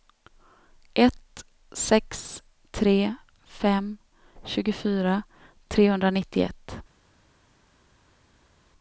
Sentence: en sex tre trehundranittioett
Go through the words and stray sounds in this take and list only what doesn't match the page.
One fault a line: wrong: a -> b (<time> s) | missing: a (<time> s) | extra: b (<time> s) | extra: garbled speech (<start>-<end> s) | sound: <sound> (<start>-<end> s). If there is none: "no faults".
wrong: en -> ett (0.9 s)
extra: fem tjugofyra (3.4 s)